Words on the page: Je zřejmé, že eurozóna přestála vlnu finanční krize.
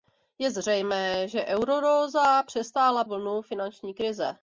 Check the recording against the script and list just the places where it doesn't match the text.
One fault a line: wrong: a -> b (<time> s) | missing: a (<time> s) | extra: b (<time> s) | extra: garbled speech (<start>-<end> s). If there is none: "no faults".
no faults